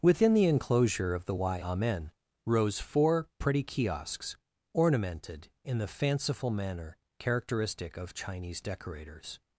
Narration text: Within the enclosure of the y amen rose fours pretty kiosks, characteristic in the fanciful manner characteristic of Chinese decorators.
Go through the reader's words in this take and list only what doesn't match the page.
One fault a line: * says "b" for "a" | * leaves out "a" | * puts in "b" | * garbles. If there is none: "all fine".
* says "four" for "fours"
* says "ornamented" for "characteristic"